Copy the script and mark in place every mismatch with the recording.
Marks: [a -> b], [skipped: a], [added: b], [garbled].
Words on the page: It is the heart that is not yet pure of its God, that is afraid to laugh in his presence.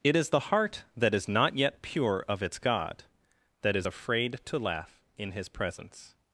It is the heart that is not yet pure of its God, that is afraid to laugh in his presence.